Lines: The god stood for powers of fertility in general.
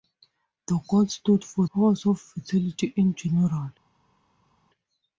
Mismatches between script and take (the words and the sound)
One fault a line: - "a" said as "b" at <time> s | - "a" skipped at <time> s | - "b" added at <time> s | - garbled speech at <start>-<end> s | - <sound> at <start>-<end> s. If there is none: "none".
none